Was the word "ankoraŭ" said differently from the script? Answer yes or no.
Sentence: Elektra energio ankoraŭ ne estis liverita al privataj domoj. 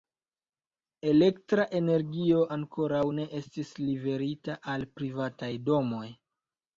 no